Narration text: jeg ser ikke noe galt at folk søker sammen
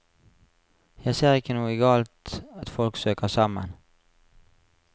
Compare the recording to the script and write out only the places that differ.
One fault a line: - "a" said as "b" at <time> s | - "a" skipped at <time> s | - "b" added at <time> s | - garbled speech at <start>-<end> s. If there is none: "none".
none